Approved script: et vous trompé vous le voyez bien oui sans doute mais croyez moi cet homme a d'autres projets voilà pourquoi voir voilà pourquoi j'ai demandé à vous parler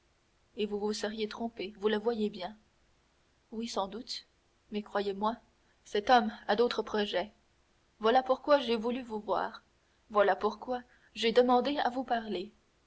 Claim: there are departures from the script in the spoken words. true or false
true